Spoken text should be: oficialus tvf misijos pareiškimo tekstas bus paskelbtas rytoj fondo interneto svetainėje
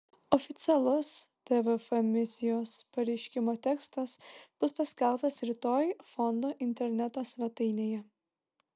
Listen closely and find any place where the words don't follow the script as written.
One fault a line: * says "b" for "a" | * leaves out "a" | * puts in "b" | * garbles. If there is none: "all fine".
all fine